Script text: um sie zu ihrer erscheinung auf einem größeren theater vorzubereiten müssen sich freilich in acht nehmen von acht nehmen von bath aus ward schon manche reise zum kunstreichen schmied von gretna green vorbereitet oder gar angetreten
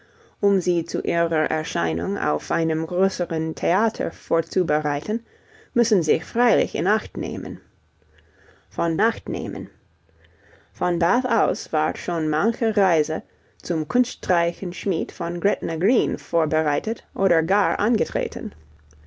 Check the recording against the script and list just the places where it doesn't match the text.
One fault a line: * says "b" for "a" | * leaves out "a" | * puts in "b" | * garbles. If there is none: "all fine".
all fine